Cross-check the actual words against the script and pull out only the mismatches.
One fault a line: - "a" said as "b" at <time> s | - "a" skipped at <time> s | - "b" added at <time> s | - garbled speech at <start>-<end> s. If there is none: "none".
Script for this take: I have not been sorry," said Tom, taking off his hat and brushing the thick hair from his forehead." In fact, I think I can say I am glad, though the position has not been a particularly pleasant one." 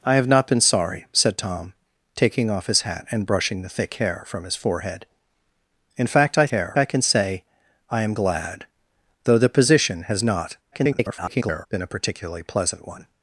- "think" said as "hair" at 6.5 s
- garbled speech at 10.7-11.7 s